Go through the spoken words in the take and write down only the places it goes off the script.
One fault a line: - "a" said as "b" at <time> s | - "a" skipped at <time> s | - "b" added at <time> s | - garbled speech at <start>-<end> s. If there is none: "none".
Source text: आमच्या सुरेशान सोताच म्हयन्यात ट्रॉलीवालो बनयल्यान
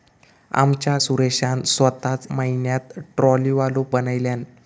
none